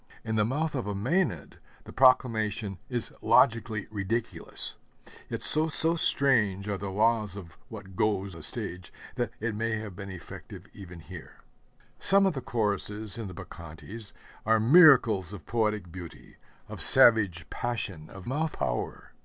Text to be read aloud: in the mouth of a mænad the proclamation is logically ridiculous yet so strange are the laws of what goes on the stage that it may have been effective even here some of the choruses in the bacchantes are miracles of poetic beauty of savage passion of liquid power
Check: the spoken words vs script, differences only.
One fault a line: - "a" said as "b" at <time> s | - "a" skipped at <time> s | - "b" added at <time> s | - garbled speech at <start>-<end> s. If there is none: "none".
- "so" added at 5.7 s
- "on" skipped at 8.4 s
- "liquid" said as "mouth" at 18.2 s